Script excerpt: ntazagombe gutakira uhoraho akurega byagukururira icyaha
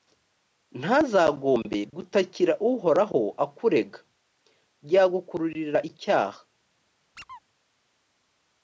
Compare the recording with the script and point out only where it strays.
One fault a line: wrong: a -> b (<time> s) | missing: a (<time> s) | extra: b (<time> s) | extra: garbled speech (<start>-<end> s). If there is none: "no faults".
no faults